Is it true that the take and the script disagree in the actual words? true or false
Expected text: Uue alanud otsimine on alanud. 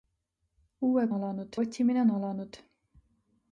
false